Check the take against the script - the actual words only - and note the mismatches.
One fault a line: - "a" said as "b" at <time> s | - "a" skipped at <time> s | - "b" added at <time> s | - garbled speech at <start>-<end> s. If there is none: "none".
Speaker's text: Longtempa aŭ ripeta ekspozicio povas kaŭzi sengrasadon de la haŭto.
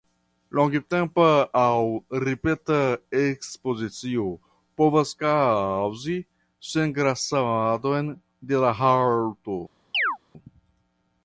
none